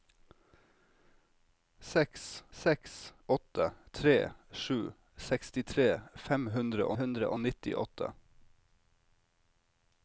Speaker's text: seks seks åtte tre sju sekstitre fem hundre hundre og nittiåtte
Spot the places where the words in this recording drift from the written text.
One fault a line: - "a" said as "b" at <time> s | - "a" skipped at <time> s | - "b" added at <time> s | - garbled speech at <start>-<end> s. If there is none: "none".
none